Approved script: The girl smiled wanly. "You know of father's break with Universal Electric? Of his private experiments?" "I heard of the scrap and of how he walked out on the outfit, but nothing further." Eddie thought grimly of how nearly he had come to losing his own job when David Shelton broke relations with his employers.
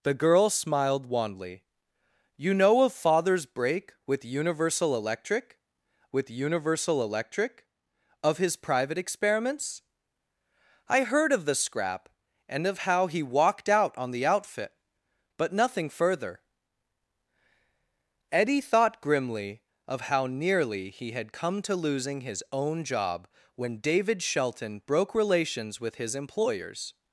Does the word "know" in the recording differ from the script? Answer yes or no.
no